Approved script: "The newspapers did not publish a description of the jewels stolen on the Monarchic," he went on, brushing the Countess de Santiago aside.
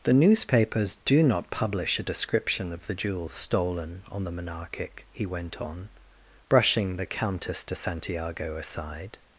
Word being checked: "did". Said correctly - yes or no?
no